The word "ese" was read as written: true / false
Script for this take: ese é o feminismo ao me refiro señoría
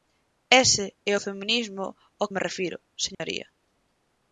true